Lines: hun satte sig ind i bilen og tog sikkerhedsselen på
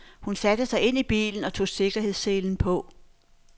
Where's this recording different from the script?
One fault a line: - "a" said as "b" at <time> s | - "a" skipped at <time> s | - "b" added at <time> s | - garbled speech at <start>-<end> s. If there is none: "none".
none